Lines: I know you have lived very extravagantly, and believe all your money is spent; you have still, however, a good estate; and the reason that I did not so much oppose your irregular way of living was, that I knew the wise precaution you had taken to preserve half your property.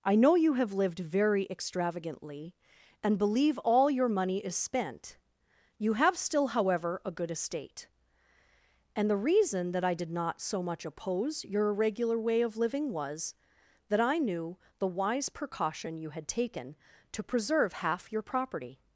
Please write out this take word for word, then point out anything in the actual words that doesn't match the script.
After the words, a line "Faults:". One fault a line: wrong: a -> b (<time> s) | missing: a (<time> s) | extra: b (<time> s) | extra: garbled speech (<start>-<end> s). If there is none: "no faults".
I know you have lived very extravagantly, and believe all your money is spent; you have still, however, a good estate; and the reason that I did not so much oppose your irregular way of living was, that I knew the wise precaution you had taken to preserve half your property.
Faults:
no faults